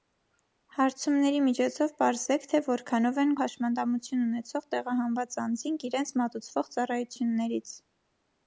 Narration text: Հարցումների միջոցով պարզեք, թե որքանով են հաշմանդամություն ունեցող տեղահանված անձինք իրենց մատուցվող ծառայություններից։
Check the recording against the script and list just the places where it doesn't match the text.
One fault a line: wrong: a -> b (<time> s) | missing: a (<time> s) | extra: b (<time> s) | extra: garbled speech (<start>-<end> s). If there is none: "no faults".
no faults